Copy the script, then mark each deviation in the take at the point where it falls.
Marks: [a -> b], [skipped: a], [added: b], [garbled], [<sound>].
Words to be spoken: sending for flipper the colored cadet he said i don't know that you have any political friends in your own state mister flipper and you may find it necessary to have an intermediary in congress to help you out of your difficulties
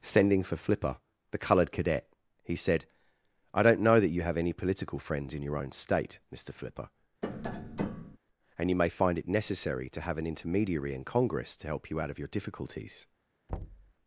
sending for flipper the colored cadet he said i don't know that you have any political friends in your own state mister flipper [tap] and you may find it necessary to have an intermediary in congress to help you out of your difficulties [thud]